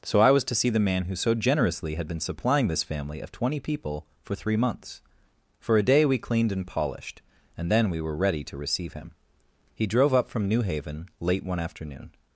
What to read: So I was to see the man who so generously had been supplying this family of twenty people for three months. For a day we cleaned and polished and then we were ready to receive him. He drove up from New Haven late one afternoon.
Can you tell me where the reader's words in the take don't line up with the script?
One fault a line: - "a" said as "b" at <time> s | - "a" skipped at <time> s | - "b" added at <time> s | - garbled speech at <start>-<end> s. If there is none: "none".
none